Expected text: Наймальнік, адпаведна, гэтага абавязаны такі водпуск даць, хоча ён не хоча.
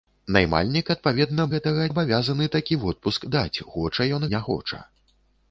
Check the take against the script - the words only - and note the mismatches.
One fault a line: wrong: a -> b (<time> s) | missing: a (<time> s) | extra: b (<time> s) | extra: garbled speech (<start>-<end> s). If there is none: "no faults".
no faults